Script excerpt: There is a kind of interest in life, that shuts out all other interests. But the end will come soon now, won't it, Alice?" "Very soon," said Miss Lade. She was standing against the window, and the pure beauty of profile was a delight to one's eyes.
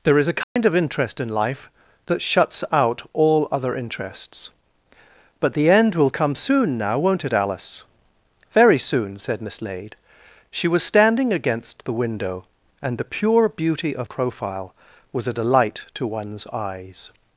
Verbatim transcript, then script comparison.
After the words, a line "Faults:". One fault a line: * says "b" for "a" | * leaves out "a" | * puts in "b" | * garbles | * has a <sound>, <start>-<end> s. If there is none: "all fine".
There is a kind of interest in life, that shuts out all other interests. But the end will come soon now, won't it, Alice?" "Very soon," said Miss Lade. She was standing against the window, and the pure beauty of profile was a delight to one's eyes.
Faults:
* has a dropout, 0.4-0.6 s